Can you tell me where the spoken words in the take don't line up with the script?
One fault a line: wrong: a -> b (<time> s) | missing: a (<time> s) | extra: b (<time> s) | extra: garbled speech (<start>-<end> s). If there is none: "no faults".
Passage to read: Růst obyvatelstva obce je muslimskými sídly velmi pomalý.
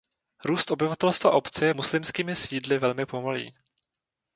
no faults